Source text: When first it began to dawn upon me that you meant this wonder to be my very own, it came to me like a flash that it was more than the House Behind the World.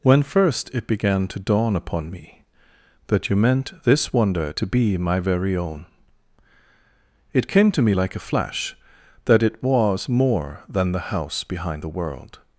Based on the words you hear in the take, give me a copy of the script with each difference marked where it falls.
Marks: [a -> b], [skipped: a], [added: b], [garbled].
When first it began to dawn upon me that you meant this wonder to be my very own, it came to me like a flash that it was more than the House Behind the World.